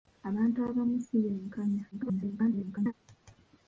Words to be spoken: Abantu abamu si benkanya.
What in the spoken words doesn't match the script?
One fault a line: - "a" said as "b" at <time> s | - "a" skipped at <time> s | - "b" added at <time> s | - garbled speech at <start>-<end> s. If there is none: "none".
- garbled speech at 1.9-2.9 s